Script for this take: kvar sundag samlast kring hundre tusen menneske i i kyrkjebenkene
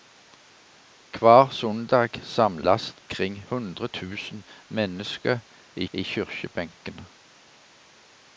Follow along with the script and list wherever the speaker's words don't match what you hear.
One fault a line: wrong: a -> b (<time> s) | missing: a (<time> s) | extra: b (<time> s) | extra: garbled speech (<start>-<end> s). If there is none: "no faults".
no faults